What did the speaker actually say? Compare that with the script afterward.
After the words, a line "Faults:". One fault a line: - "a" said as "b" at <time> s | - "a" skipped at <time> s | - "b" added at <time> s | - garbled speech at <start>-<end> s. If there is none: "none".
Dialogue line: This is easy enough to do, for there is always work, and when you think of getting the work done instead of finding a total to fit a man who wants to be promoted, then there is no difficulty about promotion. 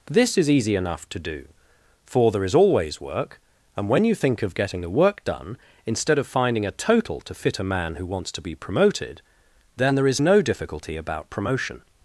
This is easy enough to do, for there is always work, and when you think of getting the work done instead of finding a total to fit a man who wants to be promoted, then there is no difficulty about promotion.
Faults:
none